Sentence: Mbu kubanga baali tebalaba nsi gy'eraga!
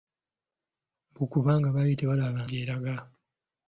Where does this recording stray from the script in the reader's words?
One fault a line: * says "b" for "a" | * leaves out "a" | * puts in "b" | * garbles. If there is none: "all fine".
* leaves out "nsi"